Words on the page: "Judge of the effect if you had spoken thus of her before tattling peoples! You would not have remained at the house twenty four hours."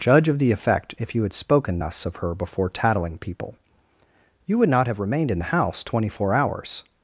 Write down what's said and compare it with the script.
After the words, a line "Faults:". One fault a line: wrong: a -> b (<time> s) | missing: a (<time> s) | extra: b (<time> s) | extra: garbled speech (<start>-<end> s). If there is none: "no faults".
"Judge of the effect if you had spoken thus of her before tattling people! You would not have remained in the house twenty four hours."
Faults:
wrong: peoples -> people (3.2 s)
wrong: at -> in (5.3 s)